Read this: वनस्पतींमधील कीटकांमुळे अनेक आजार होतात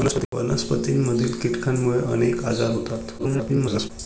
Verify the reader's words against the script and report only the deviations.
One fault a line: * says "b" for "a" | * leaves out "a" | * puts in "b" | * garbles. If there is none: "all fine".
* garbles